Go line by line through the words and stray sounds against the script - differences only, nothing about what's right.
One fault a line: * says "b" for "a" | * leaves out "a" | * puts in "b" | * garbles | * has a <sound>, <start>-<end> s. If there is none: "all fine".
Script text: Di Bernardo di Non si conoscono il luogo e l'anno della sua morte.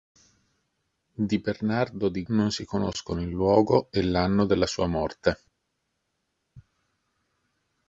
all fine